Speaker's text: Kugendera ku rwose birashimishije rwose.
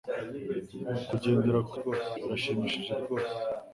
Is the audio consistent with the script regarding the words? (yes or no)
yes